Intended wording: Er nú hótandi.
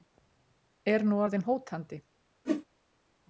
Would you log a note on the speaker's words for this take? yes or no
yes